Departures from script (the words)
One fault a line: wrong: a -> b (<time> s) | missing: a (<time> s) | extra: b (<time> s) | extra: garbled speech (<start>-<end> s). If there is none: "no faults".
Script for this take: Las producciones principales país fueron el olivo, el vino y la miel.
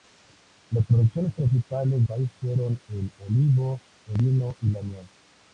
no faults